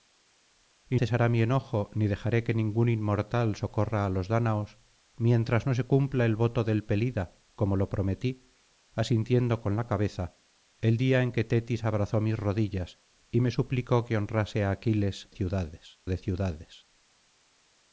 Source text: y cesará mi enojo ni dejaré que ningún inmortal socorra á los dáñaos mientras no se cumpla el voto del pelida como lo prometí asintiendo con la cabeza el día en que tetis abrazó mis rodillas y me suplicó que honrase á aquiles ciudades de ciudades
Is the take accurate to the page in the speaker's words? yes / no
yes